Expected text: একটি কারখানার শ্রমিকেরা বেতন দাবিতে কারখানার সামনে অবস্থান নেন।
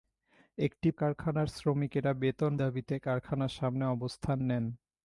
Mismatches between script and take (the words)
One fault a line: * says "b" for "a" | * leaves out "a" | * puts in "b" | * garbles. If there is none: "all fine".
all fine